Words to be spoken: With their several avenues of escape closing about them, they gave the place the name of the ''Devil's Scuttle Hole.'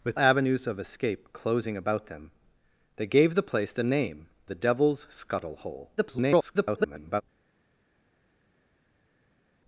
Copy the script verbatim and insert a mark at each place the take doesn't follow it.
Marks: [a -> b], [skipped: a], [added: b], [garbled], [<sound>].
With [skipped: their several] avenues of escape closing about them, they gave the place the name [skipped: of] the ''Devil's Scuttle Hole.' [garbled]